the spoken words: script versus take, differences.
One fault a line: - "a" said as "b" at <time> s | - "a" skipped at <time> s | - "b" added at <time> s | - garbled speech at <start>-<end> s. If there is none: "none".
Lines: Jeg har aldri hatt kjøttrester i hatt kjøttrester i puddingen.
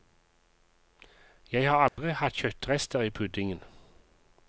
- "hatt kjøttrester i" skipped at 3.1 s